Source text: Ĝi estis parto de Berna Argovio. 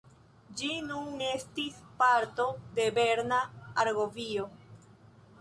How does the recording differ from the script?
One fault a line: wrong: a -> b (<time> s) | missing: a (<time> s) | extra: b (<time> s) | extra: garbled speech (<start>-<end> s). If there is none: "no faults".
extra: nun (0.8 s)